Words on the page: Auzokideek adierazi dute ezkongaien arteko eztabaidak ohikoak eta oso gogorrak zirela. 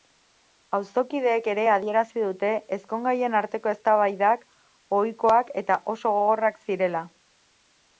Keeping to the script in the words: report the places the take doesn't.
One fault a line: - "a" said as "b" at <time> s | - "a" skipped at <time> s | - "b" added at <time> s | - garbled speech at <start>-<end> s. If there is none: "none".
- "ere" added at 1.5 s